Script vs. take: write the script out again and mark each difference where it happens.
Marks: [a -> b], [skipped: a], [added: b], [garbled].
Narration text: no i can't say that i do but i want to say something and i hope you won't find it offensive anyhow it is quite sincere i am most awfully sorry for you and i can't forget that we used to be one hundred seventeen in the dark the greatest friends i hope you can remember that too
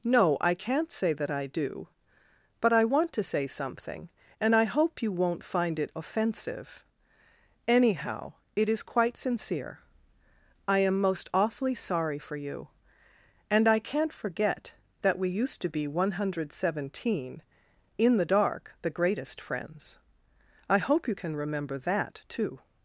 no i can't say that i do but i want to say something and i hope you won't find it offensive anyhow it is quite sincere i am most awfully sorry for you and i can't forget that we used to be one hundred seventeen in the dark the greatest friends i hope you can remember that too